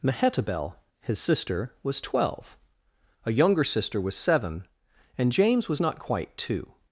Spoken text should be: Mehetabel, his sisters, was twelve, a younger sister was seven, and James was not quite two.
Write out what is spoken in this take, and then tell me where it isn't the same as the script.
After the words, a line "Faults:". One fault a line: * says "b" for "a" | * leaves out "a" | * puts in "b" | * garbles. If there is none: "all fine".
Mehetabel, his sister, was twelve, a younger sister was seven, and James was not quite two.
Faults:
* says "sister" for "sisters"